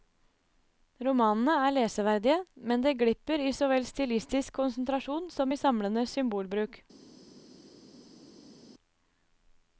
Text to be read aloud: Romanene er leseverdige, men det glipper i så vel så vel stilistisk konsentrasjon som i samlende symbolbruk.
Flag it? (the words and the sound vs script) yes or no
yes